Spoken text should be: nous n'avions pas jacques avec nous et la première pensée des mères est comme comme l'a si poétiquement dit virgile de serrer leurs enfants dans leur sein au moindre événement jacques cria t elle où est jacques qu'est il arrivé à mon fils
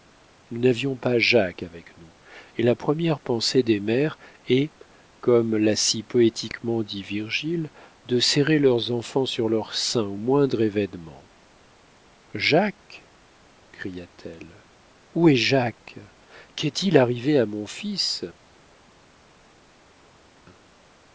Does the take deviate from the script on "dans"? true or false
true